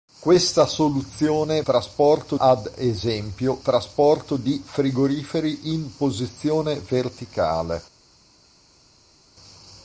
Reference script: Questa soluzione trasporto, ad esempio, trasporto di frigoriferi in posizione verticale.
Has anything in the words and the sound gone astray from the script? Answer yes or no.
no